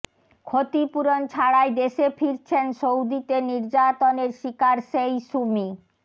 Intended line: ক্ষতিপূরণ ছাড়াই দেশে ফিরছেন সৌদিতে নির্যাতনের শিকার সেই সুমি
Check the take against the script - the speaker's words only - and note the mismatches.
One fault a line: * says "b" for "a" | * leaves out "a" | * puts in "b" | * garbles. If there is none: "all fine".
all fine